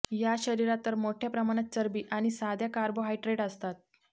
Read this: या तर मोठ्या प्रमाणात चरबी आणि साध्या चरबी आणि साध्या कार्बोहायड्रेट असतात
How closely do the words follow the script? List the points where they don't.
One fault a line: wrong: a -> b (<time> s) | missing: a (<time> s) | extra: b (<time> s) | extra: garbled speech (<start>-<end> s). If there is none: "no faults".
extra: शरीरात (0.4 s)
missing: चरबी आणि साध्या (2.7 s)